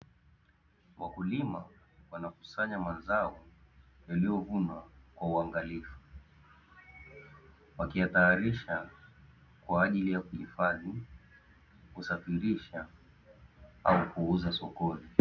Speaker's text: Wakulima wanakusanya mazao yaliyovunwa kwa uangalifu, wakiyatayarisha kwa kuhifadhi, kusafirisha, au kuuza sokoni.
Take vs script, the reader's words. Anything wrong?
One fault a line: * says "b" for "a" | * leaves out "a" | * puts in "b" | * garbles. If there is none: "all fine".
* puts in "ajili ya"